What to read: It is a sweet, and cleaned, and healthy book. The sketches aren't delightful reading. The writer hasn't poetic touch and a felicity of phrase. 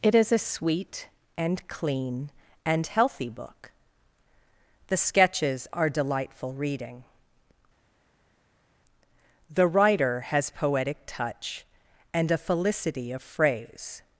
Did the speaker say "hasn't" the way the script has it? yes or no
no